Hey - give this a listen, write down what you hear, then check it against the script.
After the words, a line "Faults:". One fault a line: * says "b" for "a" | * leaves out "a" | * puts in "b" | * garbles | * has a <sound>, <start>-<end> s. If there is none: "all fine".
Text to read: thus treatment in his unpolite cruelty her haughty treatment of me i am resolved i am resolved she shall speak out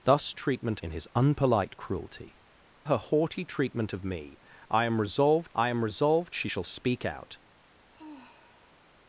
thus treatment in his unpolite cruelty her haughty treatment of me i am resolved i am resolved she shall speak out
Faults:
* has a sigh, 7.9-8.8 s